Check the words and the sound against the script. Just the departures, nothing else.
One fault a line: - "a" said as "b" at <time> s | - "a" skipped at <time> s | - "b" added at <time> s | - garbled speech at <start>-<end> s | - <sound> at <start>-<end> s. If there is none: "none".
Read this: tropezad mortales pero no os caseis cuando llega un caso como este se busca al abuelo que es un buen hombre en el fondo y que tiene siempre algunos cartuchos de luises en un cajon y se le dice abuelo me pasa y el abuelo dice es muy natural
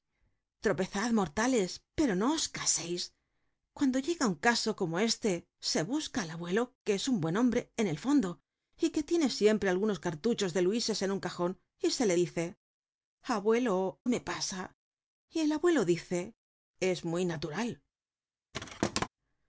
- thud at 18.5-19.1 s